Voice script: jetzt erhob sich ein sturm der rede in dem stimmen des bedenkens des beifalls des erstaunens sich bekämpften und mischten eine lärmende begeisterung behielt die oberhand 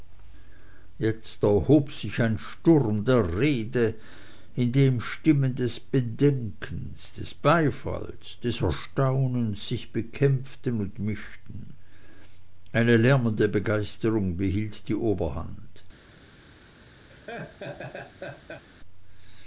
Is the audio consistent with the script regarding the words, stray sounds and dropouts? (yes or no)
no